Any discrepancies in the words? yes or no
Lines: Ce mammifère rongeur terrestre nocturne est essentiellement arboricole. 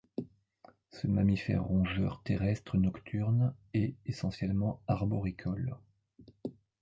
no